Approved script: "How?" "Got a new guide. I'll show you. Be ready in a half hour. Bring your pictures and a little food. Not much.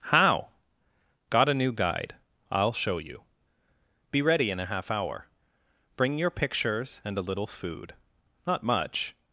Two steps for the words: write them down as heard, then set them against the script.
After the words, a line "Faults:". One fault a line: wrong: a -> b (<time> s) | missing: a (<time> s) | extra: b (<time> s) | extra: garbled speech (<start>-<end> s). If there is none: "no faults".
"How?" "Got a new guide. I'll show you. Be ready in a half hour. Bring your pictures and a little food. Not much.
Faults:
no faults